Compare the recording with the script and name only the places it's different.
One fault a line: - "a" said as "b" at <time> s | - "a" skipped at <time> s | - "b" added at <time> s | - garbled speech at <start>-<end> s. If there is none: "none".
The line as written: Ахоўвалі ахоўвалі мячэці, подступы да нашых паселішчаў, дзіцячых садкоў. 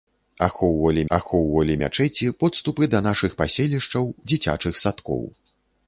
none